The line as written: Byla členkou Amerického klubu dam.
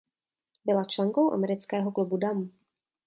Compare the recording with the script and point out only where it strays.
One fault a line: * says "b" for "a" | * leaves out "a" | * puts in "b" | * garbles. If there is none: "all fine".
all fine